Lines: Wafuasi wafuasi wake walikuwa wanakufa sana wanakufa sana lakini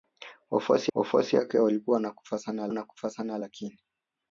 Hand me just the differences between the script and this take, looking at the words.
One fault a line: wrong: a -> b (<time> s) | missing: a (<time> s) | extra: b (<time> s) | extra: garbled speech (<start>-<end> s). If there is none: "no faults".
no faults